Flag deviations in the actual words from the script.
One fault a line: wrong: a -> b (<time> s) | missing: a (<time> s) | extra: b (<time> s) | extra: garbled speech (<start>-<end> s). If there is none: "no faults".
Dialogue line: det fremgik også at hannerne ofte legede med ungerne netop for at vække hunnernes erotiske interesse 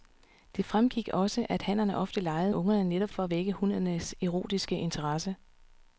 missing: med (2.5 s)